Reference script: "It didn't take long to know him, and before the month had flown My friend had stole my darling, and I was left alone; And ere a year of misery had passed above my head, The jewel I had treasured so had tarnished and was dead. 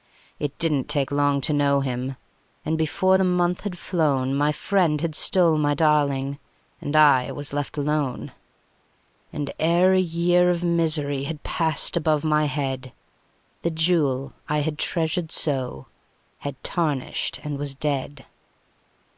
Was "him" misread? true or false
false